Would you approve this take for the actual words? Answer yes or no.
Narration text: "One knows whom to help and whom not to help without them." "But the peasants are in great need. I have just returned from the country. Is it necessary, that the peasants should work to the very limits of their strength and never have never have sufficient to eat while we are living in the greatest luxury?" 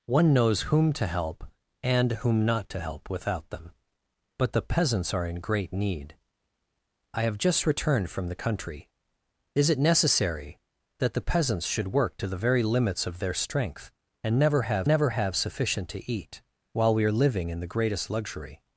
yes